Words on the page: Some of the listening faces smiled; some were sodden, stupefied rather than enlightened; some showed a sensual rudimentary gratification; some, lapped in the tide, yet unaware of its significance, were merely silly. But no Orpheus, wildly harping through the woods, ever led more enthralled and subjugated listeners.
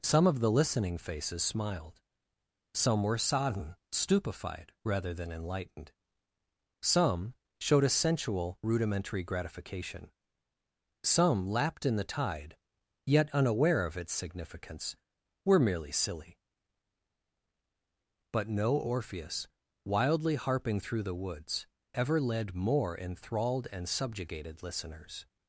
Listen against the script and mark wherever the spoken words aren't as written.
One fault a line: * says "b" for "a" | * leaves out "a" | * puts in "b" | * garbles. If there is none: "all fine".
all fine